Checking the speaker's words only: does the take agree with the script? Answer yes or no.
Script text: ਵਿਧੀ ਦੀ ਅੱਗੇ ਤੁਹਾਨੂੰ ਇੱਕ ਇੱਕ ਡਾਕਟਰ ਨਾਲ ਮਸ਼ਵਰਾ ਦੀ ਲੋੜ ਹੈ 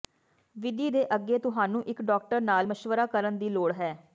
no